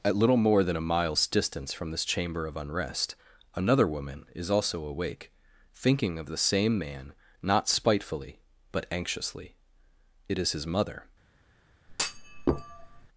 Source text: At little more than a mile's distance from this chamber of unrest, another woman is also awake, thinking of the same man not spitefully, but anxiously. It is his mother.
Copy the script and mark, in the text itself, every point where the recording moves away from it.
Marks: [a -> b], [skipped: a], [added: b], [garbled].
At little more than a mile's distance from this chamber of unrest, another woman is also awake, thinking of the same man not spitefully, but anxiously. It is his mother.